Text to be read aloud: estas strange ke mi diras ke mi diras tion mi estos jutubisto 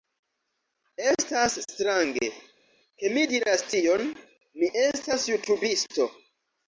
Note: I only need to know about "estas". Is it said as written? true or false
true